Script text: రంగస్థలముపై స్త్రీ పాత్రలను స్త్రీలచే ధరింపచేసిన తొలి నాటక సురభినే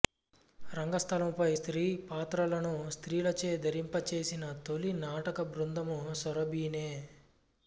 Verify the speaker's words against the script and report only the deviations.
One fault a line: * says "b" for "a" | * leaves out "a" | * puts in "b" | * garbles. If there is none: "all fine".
* puts in "బృందము"